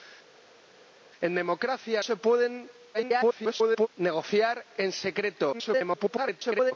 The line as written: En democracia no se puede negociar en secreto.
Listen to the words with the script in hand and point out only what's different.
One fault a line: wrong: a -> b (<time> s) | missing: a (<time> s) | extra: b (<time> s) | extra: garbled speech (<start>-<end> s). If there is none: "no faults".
missing: no (2.0 s)
extra: garbled speech (2.9-3.9 s)
extra: garbled speech (5.5-6.7 s)